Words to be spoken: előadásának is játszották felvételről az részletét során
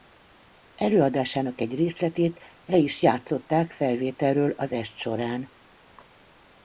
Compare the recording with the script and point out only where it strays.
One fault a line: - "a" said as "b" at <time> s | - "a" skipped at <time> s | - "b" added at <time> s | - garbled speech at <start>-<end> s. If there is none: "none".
- "egy részletét le" added at 1.6 s
- "részletét" said as "est" at 4.7 s